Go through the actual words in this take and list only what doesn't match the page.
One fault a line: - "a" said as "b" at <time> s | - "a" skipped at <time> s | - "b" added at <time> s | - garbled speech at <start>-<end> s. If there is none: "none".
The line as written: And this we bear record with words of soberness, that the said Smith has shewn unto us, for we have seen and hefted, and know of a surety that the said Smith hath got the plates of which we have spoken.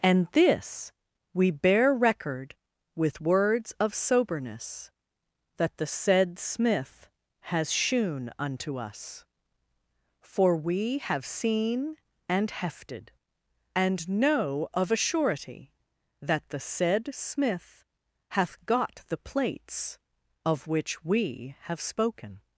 none